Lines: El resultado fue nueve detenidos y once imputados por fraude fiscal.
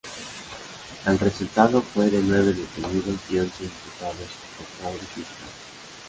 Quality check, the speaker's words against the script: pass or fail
fail